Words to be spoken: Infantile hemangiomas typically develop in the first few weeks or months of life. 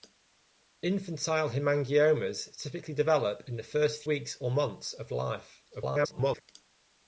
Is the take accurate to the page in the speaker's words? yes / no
no